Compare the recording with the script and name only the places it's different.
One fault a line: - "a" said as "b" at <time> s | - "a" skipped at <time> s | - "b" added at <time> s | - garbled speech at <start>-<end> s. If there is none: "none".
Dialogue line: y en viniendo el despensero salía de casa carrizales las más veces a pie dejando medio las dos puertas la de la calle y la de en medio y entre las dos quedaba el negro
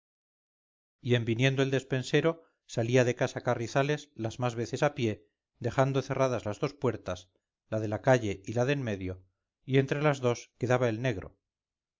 - "medio" said as "cerradas" at 6.0 s